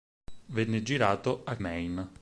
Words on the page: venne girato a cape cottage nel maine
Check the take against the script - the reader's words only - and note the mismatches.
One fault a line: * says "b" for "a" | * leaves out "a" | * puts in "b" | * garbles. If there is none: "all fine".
* leaves out "cape cottage nel"